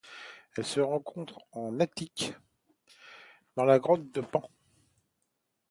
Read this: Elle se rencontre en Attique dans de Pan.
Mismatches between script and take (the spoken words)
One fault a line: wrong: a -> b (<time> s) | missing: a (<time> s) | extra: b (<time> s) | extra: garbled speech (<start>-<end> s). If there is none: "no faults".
extra: la grotte (3.6 s)